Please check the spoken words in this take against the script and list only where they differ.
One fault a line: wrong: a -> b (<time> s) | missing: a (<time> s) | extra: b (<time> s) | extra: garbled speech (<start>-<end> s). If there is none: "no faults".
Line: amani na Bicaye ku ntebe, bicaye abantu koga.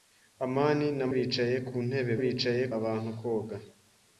no faults